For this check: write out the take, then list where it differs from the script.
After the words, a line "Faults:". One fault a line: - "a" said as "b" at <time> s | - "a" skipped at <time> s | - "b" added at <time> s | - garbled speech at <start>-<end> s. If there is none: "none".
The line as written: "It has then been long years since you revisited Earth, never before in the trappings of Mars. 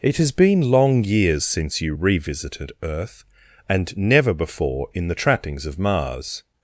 "It has been long years since you revisited Earth, and never before in the trappings of Mars.
Faults:
- "then" skipped at 0.3 s
- "and" added at 3.7 s